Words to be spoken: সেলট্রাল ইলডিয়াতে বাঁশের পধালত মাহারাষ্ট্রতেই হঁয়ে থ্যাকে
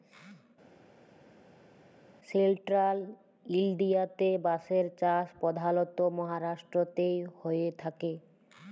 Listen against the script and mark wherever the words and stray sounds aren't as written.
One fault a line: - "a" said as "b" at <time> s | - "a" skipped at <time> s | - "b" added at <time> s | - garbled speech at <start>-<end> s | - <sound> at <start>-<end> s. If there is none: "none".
- "চাষ" added at 5.0 s